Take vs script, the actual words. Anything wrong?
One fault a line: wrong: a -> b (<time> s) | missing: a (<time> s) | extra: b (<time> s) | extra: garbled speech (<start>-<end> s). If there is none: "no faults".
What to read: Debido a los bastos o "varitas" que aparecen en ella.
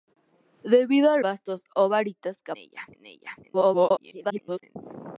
missing: los (1.2 s)
wrong: aparecen -> ella (2.6 s)
extra: garbled speech (3.4-4.8 s)